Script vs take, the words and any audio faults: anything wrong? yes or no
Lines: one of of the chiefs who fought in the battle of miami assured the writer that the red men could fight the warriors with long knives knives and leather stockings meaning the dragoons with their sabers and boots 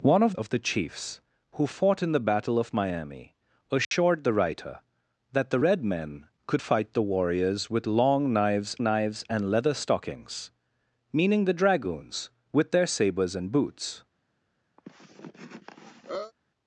yes